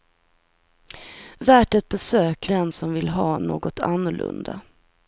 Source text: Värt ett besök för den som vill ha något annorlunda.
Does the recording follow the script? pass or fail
fail